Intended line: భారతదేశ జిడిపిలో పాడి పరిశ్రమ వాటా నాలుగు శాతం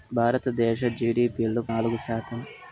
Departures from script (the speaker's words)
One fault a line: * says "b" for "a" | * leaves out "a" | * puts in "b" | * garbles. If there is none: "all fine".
* leaves out "పాడి పరిశ్రమ వాటా"